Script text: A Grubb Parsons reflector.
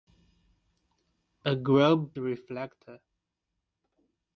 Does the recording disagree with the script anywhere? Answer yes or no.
yes